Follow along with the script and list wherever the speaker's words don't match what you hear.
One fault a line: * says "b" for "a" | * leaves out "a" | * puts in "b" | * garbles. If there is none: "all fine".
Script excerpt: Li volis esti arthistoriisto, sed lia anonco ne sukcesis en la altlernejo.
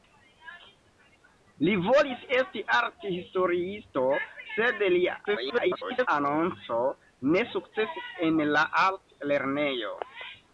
* garbles